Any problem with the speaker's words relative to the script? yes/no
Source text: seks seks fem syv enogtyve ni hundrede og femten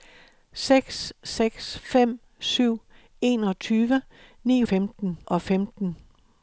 yes